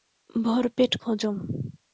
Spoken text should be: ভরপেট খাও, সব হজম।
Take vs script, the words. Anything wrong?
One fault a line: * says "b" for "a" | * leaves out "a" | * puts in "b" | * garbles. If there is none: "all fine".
* leaves out "খাও সব"